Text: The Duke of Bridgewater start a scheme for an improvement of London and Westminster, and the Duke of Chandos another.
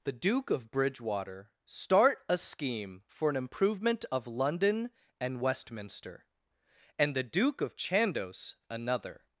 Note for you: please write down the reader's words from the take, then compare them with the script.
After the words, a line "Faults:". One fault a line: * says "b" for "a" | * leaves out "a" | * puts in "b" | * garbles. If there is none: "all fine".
The Duke of Bridgewater start a scheme for an improvement of London and Westminster, and the Duke of Chandos another.
Faults:
all fine